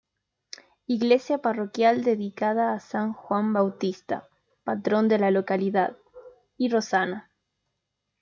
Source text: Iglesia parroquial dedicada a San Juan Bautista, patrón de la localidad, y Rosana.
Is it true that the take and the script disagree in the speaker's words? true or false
false